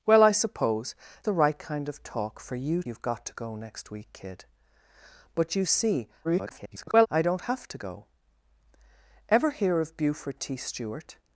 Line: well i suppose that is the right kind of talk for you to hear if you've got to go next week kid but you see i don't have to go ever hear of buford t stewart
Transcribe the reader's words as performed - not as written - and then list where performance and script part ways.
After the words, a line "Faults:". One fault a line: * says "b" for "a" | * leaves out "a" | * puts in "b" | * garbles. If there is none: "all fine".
well i suppose the right kind of talk for you you've got to go next week kid but you see [garbled] i don't have to go ever hear of buford t stewart
Faults:
* leaves out "that is"
* leaves out "to hear if"
* garbles